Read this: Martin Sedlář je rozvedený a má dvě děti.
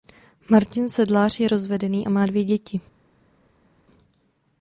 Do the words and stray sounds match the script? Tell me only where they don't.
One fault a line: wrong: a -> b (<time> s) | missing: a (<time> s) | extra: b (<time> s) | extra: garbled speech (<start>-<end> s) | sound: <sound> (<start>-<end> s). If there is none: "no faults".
no faults